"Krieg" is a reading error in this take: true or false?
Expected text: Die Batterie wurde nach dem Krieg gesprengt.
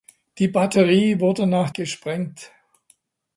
true